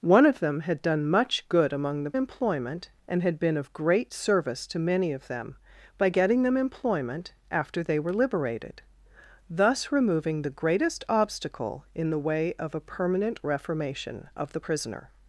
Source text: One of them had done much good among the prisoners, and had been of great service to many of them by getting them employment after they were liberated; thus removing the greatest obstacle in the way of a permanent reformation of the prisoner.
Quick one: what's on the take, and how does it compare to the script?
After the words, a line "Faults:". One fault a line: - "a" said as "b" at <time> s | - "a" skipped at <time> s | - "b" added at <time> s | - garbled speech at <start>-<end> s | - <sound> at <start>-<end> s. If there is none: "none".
One of them had done much good among the employment, and had been of great service to many of them by getting them employment after they were liberated; thus removing the greatest obstacle in the way of a permanent reformation of the prisoner.
Faults:
- "prisoners" said as "employment" at 2.1 s